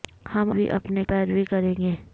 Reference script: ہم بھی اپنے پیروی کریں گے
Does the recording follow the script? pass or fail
pass